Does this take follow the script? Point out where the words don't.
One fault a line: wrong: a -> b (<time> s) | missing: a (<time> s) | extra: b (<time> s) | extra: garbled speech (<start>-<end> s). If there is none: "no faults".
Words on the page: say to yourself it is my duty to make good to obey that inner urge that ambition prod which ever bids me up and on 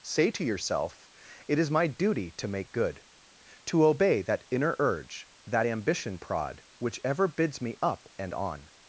no faults